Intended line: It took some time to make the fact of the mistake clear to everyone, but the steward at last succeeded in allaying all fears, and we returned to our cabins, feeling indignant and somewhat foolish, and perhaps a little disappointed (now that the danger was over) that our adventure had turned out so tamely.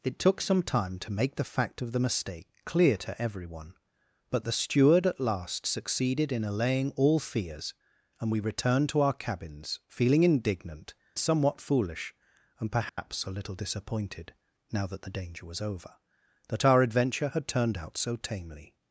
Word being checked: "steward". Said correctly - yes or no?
yes